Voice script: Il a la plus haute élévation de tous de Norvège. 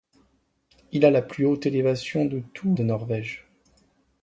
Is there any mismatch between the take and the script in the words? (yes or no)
no